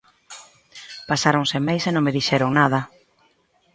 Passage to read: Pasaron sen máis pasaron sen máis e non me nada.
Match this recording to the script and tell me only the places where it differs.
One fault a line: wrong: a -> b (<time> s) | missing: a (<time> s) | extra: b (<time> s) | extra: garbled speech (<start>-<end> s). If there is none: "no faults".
missing: pasaron sen máis (1.8 s)
extra: dixeron (2.2 s)